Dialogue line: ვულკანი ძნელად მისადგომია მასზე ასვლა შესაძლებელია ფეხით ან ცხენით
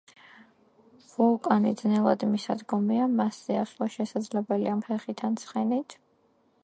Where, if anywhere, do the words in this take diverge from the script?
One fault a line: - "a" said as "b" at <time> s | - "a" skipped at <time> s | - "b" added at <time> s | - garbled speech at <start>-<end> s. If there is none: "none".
none